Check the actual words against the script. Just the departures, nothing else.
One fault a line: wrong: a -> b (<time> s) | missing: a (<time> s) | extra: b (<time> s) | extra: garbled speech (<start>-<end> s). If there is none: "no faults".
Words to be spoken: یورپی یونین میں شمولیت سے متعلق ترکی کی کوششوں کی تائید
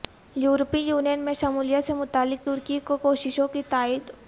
no faults